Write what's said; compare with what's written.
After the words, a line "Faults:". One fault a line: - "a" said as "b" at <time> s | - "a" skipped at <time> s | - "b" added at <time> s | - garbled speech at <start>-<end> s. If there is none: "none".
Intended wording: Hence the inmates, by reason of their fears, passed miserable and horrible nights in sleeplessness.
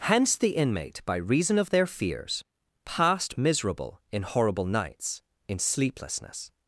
Hence the inmate, by reason of their fears, passed miserable in horrible nights in sleeplessness.
Faults:
- "inmates" said as "inmate" at 0.6 s
- "and" said as "in" at 4.1 s